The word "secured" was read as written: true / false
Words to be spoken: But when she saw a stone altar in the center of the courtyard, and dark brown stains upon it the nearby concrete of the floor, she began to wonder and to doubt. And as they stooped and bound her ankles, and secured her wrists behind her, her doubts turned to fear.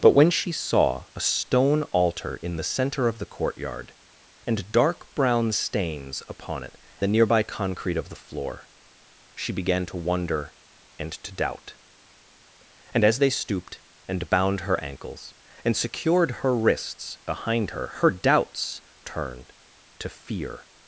true